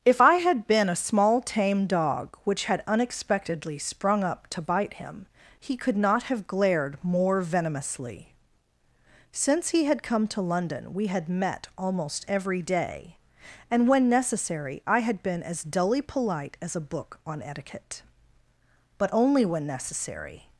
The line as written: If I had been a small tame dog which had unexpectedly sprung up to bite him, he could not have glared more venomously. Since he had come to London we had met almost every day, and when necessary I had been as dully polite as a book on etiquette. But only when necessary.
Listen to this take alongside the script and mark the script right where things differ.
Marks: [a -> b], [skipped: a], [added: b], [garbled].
If I had been a small tame dog which had unexpectedly sprung up to bite him, he could not have glared more venomously. Since he had come to London we had met almost every day, and when necessary I had been as dully polite as a book on etiquette. But only when necessary.